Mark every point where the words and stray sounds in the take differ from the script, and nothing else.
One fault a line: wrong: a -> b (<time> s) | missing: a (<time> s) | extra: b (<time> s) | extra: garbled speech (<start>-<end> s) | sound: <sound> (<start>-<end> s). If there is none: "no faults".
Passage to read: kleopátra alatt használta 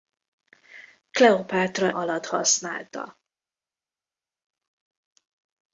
no faults